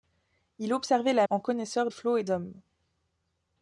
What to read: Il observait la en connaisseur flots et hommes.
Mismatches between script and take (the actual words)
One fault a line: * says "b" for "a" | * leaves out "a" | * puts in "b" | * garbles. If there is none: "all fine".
all fine